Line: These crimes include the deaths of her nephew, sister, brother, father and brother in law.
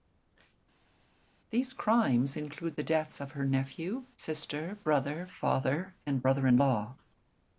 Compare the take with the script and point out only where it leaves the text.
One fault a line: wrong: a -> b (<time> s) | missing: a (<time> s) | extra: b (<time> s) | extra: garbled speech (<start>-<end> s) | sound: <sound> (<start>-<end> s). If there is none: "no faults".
no faults